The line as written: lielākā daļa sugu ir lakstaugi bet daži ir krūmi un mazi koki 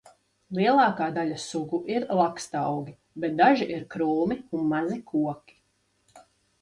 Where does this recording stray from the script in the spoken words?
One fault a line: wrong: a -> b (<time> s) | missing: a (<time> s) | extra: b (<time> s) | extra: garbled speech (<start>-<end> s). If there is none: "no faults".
no faults